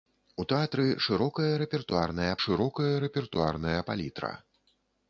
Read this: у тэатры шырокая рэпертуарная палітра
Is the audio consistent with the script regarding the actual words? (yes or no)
no